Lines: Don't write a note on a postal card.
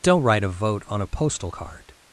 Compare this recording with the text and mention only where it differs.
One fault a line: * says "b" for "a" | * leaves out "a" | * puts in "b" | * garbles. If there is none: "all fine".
* says "vote" for "note"